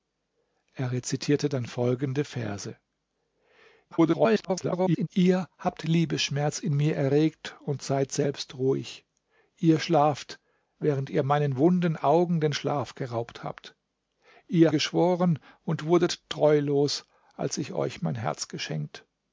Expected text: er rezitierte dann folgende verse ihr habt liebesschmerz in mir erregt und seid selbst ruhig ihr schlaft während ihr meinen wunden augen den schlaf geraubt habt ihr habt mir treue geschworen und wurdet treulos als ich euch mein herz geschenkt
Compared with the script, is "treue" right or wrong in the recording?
wrong